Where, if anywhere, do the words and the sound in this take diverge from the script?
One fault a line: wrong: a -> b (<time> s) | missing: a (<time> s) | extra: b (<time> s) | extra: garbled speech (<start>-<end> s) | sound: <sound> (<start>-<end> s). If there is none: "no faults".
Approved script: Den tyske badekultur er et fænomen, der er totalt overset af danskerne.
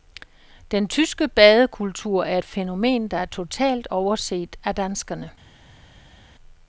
no faults